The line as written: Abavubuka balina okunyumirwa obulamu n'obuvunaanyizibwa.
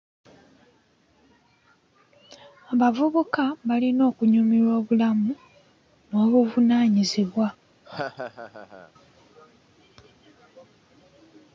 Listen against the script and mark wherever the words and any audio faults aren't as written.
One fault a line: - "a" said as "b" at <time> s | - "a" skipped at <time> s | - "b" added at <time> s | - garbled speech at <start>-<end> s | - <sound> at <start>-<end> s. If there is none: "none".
- laugh at 7.8-8.9 s